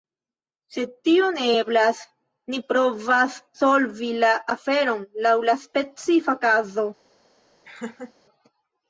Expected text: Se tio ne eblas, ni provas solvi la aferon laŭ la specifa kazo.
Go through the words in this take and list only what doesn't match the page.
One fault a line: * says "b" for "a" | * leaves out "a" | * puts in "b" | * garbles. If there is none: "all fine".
all fine